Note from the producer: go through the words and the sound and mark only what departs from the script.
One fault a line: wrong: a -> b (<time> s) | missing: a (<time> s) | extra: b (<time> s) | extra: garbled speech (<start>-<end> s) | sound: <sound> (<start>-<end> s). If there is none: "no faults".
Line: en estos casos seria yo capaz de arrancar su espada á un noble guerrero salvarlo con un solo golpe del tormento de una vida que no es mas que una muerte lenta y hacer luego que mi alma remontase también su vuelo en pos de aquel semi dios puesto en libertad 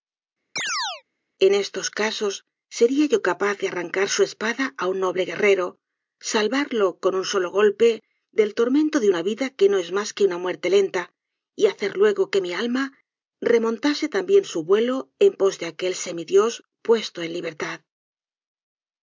sound: chirp (0.6-1.0 s)